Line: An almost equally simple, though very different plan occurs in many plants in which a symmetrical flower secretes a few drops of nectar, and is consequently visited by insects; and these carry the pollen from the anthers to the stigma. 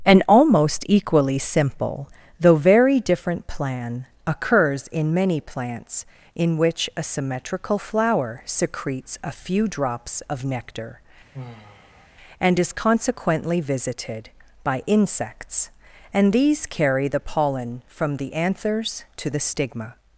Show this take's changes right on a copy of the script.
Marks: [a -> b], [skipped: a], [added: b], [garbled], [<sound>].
An almost equally simple, though very different plan occurs in many plants in which a symmetrical flower secretes a few drops of nectar, [sigh] and is consequently visited by insects; and these carry the pollen from the anthers to the stigma.